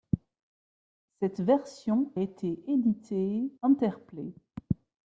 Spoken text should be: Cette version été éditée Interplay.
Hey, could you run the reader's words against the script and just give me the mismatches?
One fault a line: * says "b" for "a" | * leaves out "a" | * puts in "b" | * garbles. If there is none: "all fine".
all fine